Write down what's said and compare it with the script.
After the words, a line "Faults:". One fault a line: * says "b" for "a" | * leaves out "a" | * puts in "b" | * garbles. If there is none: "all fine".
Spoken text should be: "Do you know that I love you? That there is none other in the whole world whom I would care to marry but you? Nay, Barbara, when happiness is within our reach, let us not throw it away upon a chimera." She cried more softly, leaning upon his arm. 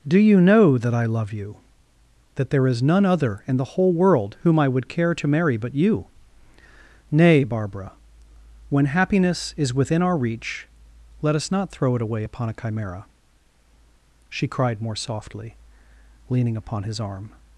"Do you know that I love you? That there is none other in the whole world whom I would care to marry but you? Nay, Barbara, when happiness is within our reach, let us not throw it away upon a chimera." She cried more softly, leaning upon his arm.
Faults:
all fine